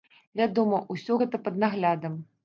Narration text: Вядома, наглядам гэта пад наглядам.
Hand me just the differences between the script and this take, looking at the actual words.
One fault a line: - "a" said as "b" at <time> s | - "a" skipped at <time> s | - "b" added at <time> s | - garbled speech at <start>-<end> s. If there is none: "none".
- "наглядам" said as "усё" at 0.9 s